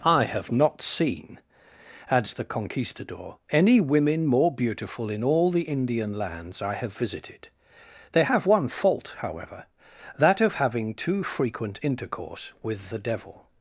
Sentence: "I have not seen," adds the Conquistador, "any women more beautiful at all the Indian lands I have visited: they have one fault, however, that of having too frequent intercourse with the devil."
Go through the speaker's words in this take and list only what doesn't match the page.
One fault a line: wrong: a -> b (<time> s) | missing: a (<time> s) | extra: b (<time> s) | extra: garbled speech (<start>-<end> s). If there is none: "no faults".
wrong: at -> in (5.1 s)